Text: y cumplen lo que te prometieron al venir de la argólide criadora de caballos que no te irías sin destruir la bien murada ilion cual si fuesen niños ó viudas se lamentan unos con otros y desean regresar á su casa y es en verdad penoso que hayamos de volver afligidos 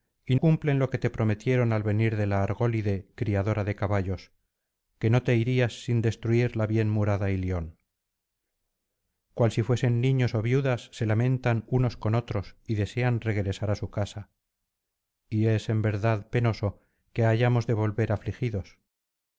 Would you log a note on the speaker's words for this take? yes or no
no